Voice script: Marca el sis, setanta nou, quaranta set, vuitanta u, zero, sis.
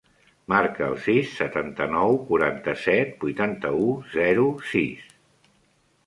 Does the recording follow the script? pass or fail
pass